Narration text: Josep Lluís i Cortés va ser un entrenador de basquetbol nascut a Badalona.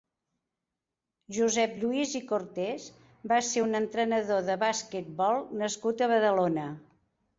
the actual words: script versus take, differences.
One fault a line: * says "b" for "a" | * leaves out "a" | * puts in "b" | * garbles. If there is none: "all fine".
all fine